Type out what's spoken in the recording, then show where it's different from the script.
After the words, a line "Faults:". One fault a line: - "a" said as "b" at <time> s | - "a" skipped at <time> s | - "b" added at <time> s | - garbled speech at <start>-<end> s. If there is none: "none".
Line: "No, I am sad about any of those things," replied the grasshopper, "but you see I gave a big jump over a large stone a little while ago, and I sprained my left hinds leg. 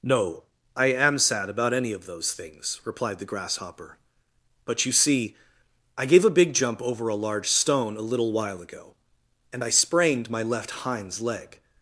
"No, I am sad about any of those things," replied the grasshopper, "but you see I gave a big jump over a large stone a little while ago, and I sprained my left hinds leg.
Faults:
none